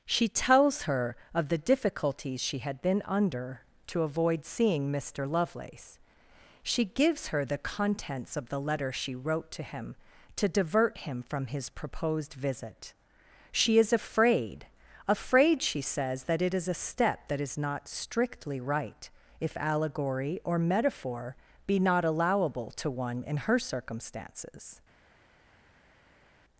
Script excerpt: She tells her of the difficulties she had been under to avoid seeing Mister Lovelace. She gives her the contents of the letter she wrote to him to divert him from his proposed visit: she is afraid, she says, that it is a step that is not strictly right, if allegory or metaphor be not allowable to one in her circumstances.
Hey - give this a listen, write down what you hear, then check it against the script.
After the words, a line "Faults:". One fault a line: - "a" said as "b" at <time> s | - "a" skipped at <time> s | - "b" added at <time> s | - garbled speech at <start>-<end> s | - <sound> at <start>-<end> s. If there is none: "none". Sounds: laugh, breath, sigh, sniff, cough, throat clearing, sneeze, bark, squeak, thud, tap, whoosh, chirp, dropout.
She tells her of the difficulties she had been under to avoid seeing Mister Lovelace. She gives her the contents of the letter she wrote to him to divert him from his proposed visit: she is afraid afraid, she says, that it is a step that is not strictly right, if allegory or metaphor be not allowable to one in her circumstances.
Faults:
- "afraid" added at 15.1 s